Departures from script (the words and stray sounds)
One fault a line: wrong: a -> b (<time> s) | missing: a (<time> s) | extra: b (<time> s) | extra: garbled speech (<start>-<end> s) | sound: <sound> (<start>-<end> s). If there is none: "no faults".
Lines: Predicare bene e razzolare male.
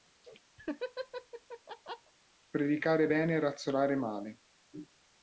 sound: laugh (0.6-2.1 s)